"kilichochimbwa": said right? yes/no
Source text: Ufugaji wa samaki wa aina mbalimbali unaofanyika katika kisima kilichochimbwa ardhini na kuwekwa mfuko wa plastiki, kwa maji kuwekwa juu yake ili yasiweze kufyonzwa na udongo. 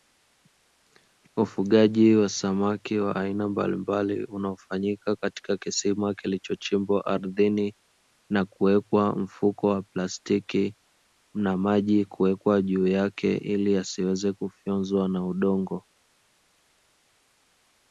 yes